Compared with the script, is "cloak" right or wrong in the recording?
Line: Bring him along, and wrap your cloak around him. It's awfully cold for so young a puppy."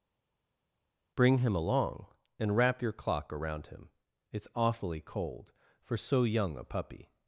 wrong